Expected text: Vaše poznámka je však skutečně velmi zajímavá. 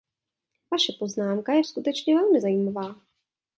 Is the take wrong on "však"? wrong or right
wrong